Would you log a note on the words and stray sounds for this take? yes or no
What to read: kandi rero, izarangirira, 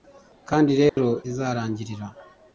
yes